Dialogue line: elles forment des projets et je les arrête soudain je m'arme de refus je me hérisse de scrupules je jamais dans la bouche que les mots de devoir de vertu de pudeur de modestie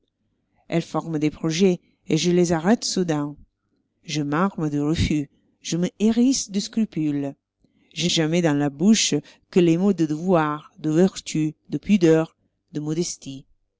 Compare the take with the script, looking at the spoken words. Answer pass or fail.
pass